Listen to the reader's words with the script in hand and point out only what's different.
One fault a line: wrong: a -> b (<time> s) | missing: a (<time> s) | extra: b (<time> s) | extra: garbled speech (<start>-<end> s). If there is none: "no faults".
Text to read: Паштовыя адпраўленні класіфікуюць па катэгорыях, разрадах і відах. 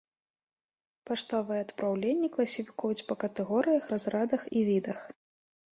no faults